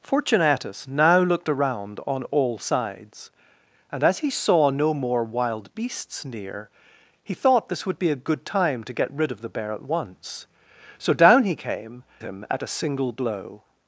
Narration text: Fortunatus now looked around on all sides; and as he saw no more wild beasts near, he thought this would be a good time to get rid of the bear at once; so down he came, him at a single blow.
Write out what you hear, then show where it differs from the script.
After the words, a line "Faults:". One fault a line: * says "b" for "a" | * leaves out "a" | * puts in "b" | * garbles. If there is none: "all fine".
Fortunatus now looked around on all sides; and as he saw no more wild beasts near, he thought this would be a good time to get rid of the bear at once; so down he came, him at a single blow.
Faults:
all fine